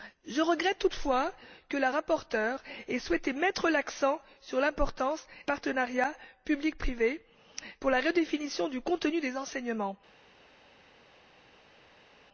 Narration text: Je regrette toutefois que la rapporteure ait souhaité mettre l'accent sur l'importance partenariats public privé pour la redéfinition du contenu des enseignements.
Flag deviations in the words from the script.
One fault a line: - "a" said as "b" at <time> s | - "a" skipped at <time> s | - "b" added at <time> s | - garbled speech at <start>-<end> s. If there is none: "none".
none